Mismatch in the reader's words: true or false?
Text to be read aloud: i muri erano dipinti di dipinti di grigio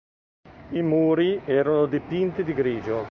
true